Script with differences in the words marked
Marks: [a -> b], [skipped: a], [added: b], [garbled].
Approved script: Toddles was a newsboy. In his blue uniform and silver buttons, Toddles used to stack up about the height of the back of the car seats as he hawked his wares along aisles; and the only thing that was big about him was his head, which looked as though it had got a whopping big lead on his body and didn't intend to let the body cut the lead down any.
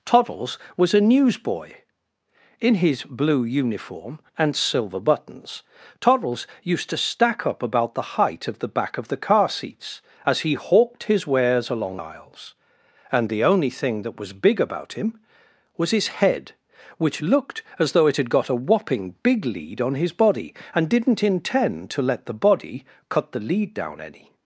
Toddles was a newsboy. In his blue uniform and silver buttons, Toddles used to stack up about the height of the back of the car seats as he hawked his wares along aisles; and the only thing that was big about him was his head, which looked as though it had got a whopping big lead on his body and didn't intend to let the body cut the lead down any.